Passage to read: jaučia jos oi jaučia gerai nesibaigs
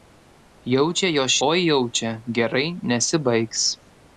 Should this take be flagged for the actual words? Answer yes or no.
no